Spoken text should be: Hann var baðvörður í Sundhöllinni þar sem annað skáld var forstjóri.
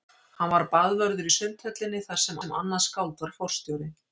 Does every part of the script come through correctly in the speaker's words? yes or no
no